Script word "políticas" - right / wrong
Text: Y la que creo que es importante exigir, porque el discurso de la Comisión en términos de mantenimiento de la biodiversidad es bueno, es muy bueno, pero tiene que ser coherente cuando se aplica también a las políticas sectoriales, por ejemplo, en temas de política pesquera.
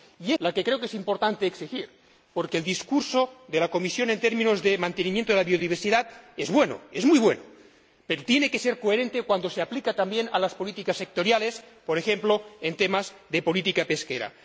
right